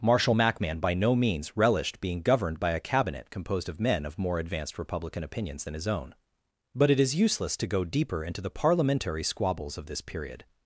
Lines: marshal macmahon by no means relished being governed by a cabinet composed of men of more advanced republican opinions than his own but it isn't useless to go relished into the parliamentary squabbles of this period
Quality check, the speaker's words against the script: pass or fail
fail